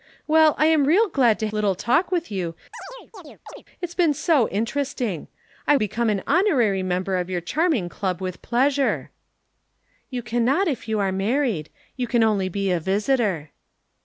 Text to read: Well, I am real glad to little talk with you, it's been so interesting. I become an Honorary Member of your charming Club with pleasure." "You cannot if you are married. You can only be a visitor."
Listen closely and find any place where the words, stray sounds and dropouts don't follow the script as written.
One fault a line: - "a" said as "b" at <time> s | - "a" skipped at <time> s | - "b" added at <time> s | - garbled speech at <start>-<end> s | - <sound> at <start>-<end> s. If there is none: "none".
- chirp at 2.7-3.6 s